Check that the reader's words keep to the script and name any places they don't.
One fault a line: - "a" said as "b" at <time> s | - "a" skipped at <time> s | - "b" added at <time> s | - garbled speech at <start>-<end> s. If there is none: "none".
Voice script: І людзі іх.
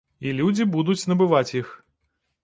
- "будуць набываць" added at 0.8 s